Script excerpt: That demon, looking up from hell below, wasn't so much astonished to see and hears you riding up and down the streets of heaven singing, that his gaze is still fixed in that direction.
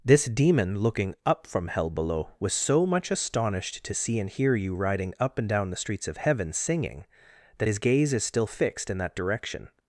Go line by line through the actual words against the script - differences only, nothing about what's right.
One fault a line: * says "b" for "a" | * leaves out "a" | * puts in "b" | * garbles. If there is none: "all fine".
* says "This" for "That"
* says "was" for "wasn't"
* says "hear" for "hears"